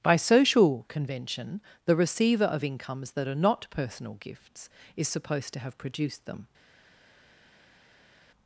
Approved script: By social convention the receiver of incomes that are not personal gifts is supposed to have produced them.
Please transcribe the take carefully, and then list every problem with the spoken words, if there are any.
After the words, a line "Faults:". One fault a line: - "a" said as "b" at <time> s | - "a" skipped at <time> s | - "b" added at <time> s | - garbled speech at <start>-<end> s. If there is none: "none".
By social convention the receiver of incomes that are not personal gifts is supposed to have produced them.
Faults:
none